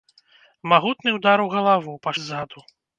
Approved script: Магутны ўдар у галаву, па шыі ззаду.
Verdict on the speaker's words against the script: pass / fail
fail